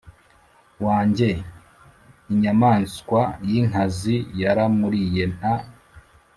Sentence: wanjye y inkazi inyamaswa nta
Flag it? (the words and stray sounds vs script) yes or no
yes